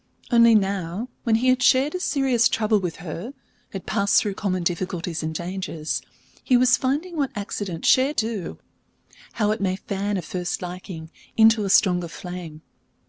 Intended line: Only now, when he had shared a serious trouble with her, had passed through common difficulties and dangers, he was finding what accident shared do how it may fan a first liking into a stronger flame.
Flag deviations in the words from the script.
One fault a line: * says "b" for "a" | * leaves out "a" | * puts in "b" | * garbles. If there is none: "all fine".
all fine